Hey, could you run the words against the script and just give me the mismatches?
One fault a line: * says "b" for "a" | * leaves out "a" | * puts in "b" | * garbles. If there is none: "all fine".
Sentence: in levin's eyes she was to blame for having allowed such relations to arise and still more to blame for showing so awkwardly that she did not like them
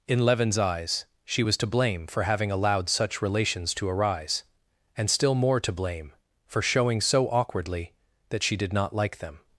all fine